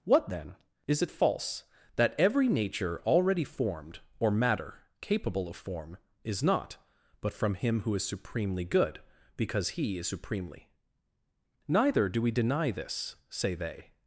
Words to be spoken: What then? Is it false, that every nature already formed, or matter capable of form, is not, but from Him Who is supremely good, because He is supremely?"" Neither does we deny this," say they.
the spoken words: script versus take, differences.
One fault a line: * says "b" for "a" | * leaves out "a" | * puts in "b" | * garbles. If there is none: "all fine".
* says "do" for "does"